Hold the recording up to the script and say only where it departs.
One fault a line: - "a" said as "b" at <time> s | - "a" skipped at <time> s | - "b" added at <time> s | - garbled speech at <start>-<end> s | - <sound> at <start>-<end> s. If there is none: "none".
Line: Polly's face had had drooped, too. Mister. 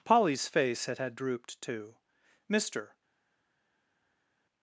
none